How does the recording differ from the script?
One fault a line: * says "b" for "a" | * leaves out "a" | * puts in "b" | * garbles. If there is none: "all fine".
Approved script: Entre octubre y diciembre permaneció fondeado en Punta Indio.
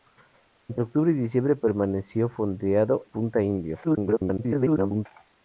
* leaves out "en"
* garbles